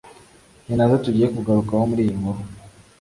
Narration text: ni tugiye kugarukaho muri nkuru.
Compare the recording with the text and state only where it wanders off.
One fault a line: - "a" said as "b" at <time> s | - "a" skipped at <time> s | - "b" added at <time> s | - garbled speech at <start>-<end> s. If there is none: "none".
- "nazo" added at 0.8 s
- "iyi" added at 2.0 s